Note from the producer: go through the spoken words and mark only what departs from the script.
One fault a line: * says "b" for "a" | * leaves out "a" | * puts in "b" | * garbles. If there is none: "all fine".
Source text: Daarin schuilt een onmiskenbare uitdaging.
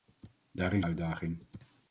* leaves out "schuilt een onmiskenbare"